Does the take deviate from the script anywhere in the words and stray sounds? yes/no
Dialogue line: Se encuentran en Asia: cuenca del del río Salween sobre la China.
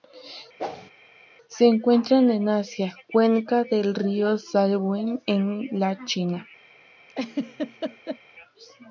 yes